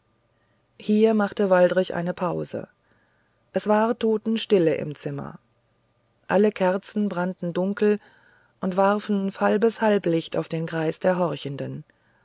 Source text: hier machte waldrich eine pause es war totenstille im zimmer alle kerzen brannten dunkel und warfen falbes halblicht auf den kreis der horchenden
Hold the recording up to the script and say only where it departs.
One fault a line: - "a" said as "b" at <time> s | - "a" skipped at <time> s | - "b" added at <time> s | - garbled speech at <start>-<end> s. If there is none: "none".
none